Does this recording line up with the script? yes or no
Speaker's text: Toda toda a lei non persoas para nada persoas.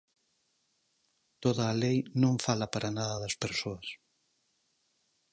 no